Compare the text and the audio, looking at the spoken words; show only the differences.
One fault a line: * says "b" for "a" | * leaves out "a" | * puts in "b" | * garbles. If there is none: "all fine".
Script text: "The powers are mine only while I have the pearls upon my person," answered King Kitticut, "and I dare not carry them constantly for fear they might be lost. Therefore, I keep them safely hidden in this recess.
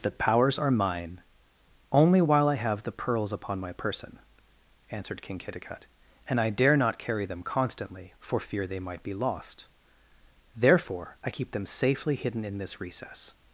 all fine